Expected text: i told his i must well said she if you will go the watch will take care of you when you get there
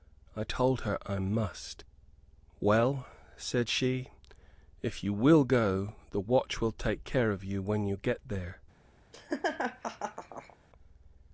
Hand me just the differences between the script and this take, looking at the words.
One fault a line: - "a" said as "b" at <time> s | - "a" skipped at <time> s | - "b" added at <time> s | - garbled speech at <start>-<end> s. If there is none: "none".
- "his" said as "her" at 0.8 s